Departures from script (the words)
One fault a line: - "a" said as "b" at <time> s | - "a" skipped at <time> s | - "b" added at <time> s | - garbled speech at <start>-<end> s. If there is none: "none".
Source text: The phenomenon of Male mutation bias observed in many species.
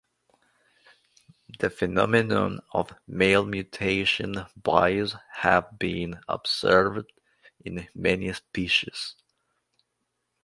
- "have been" added at 5.3 s